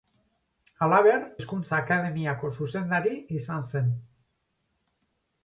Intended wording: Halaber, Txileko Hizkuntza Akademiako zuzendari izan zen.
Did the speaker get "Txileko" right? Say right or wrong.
wrong